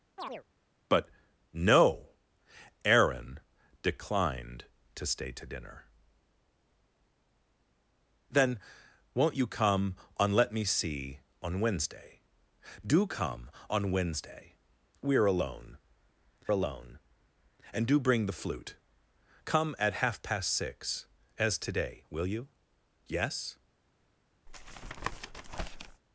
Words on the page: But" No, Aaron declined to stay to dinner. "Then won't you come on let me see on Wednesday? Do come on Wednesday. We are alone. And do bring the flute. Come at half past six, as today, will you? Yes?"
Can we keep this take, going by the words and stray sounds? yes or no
no